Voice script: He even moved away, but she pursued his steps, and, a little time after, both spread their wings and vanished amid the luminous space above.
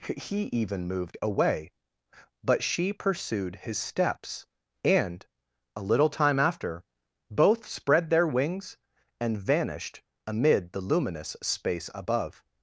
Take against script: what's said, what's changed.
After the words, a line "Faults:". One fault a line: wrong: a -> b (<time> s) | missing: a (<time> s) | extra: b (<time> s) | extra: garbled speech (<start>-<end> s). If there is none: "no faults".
He even moved away, but she pursued his steps, and, a little time after, both spread their wings and vanished amid the luminous space above.
Faults:
no faults